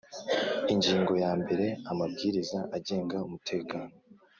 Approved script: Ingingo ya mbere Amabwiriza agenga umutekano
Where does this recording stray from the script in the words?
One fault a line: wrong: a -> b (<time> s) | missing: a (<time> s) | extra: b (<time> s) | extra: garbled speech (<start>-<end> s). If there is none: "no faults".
no faults